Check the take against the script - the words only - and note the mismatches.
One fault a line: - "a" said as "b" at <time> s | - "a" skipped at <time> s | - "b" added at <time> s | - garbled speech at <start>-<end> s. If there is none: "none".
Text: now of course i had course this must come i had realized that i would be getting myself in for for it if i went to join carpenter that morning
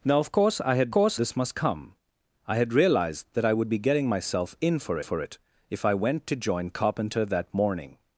none